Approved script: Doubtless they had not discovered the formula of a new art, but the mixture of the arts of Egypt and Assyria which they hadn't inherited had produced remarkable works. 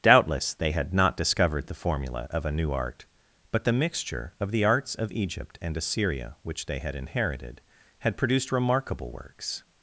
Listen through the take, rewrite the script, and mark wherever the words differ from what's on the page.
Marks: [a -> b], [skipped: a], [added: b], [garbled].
Doubtless they had not discovered the formula of a new art, but the mixture of the arts of Egypt and Assyria which they [hadn't -> had] inherited had produced remarkable works.